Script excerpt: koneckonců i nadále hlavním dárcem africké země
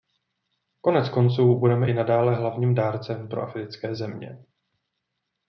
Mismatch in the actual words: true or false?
true